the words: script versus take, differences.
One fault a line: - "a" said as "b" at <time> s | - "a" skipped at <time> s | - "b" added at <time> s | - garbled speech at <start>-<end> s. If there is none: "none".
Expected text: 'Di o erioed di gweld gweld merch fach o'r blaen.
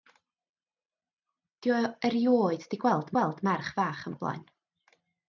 none